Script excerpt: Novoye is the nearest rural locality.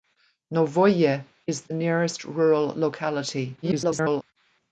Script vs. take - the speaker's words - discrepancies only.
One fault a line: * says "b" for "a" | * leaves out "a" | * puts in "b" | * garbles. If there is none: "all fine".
* garbles